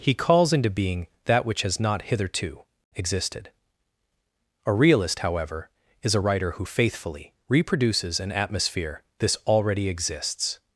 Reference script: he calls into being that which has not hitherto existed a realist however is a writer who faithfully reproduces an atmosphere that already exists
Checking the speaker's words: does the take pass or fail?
fail